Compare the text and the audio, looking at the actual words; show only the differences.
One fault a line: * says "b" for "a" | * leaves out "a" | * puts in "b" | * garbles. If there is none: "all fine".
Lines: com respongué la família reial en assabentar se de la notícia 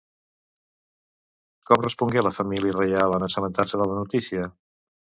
all fine